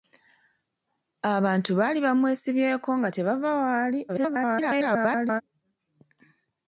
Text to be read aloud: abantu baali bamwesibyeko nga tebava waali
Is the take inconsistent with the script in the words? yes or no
yes